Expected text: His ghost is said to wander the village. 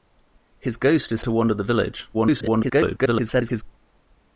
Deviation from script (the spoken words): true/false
true